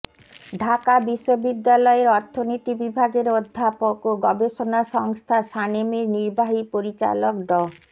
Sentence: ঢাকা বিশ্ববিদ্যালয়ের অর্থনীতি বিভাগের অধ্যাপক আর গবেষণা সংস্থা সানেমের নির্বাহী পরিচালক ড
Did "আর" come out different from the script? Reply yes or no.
yes